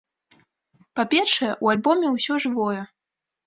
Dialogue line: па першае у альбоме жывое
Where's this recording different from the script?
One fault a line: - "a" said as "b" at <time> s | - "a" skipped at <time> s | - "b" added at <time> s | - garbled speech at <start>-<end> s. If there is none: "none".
- "ўсё" added at 2.2 s